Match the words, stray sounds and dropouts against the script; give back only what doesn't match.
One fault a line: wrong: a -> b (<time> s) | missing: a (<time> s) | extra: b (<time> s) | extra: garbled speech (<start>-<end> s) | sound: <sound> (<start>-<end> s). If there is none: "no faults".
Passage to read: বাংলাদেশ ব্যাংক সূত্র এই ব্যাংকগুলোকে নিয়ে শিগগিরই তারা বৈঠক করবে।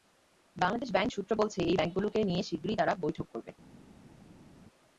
extra: বলছে (1.3 s)